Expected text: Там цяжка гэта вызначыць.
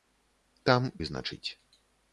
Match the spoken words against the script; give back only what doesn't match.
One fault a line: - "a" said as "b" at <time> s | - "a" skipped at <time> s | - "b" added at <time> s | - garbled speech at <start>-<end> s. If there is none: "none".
- "цяжка гэта" skipped at 0.9 s